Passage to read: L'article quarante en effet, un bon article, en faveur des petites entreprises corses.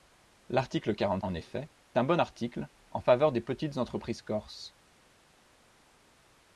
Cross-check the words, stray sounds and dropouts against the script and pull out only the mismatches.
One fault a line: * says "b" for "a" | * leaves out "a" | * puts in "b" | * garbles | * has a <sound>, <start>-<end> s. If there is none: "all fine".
all fine